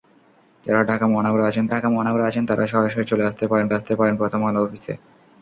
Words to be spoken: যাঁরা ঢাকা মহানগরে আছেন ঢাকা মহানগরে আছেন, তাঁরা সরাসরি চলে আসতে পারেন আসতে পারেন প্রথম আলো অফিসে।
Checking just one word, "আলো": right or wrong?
right